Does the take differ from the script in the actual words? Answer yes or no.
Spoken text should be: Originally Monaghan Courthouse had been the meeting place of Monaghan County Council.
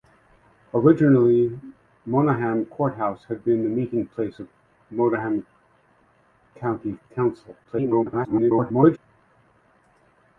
yes